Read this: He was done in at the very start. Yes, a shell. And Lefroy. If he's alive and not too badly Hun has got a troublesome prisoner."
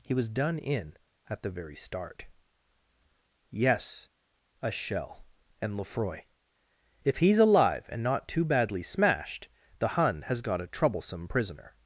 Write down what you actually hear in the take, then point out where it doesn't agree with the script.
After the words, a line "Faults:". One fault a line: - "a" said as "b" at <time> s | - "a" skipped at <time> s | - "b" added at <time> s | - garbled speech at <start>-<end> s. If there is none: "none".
He was done in at the very start. Yes, a shell. And Lefroy. If he's alive and not too badly smashed the Hun has got a troublesome prisoner."
Faults:
- "smashed the" added at 8.8 s